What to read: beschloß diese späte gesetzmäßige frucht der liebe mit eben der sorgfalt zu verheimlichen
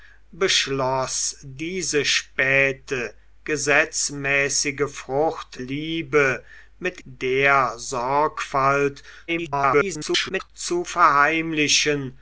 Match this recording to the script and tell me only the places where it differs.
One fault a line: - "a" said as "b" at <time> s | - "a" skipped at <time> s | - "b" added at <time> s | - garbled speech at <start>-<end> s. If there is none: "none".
- "der" skipped at 5.6 s
- "eben" skipped at 7.0 s
- garbled speech at 9.3-10.5 s